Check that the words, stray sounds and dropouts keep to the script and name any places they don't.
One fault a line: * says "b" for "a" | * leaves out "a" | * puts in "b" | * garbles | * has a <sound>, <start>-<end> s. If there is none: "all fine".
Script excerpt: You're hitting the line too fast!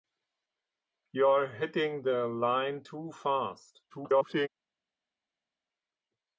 * garbles